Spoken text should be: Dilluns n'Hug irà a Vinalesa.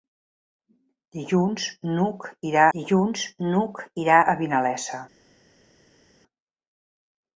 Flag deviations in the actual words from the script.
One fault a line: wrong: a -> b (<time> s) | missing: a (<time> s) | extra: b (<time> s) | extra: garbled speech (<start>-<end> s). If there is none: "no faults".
extra: dilluns n'Hug irà (2.8 s)